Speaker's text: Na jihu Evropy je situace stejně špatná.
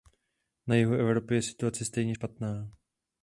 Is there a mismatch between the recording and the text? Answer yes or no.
no